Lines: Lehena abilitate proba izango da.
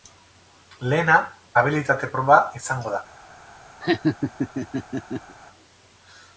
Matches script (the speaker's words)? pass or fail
pass